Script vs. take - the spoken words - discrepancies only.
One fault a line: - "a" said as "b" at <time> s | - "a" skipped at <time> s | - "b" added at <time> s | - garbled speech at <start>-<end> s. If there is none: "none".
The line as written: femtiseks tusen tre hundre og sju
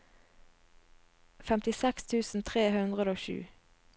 none